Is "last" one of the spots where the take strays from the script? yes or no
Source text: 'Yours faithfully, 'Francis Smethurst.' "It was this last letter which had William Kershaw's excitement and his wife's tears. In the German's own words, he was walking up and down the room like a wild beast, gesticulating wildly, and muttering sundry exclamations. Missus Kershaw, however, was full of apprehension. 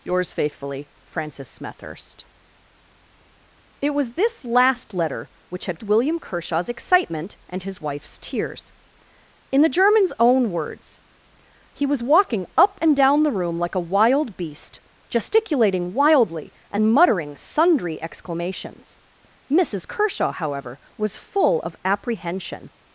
no